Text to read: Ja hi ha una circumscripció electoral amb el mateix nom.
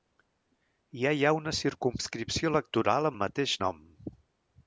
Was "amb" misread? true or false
true